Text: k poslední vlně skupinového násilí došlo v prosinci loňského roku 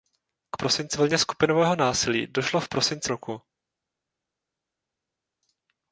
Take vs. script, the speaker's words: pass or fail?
fail